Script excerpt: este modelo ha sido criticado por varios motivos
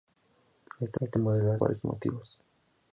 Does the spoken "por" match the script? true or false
false